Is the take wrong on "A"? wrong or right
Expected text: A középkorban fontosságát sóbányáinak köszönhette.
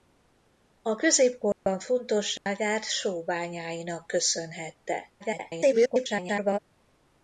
right